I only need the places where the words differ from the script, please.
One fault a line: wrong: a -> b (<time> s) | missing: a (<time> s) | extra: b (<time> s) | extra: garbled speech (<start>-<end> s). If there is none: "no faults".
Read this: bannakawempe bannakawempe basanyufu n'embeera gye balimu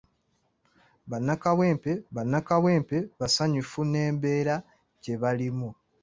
no faults